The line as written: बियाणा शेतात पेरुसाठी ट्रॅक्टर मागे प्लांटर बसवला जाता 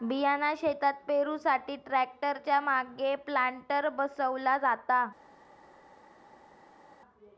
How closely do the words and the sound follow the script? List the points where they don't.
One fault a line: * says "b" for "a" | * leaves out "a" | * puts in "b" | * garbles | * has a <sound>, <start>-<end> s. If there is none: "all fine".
* puts in "च्या"